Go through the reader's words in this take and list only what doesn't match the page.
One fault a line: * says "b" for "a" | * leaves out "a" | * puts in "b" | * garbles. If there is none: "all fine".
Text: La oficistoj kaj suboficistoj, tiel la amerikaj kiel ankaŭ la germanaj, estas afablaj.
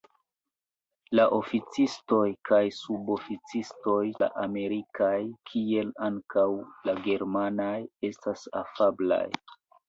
* leaves out "tiel"